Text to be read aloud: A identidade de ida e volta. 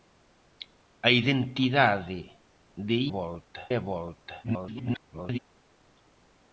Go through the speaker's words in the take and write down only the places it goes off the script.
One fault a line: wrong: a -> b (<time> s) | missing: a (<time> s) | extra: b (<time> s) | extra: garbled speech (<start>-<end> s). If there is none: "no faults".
wrong: ida -> volta (3.2 s)
extra: garbled speech (4.4-5.4 s)